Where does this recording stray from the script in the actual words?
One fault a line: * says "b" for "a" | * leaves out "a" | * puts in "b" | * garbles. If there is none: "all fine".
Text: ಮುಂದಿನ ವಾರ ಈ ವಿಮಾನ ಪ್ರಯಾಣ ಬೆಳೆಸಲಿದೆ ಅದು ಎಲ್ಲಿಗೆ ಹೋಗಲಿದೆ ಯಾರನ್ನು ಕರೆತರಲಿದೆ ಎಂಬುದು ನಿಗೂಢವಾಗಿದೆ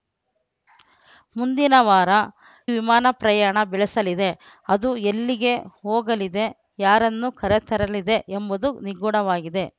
* leaves out "ಈ"